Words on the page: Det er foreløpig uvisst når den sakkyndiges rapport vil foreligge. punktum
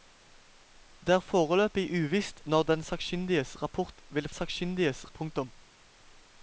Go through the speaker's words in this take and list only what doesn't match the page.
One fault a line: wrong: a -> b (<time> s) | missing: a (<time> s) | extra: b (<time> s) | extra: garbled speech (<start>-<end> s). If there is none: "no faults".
wrong: foreligge -> sakkyndiges (4.4 s)